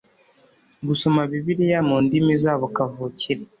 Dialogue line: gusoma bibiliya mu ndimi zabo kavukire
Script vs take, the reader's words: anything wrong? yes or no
no